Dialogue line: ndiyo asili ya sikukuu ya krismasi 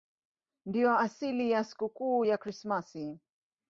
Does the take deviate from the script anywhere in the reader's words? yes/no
no